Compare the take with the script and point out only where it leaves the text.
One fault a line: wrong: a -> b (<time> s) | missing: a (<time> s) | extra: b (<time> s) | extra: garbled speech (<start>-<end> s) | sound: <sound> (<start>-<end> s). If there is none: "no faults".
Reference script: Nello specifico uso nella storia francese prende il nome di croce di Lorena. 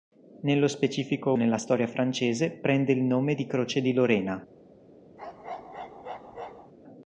missing: uso (1.3 s)
sound: bark (5.2-6.7 s)